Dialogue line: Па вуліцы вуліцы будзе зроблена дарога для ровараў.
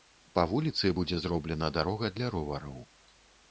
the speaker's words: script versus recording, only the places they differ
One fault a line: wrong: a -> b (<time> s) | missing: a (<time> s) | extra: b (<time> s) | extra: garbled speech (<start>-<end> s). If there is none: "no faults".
missing: вуліцы (0.9 s)